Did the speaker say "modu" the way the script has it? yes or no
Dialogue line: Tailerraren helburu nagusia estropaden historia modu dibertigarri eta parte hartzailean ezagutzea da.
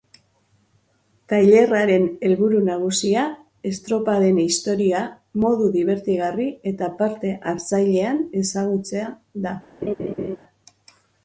yes